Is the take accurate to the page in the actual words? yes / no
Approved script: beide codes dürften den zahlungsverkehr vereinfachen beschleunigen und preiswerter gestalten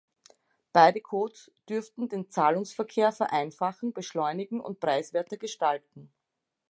yes